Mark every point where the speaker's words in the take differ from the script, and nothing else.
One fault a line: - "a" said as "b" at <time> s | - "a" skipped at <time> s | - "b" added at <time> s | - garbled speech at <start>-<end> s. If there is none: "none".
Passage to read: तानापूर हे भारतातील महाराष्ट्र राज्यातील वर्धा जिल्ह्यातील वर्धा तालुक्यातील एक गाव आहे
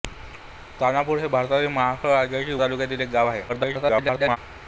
- "वर्धा जिल्ह्यातील वर्धा" skipped at 2.5 s
- garbled speech at 3.5-4.4 s